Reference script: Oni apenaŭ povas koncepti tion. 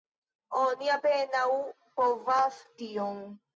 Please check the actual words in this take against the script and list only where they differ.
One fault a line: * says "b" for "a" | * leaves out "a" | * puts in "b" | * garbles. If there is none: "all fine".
* leaves out "koncepti"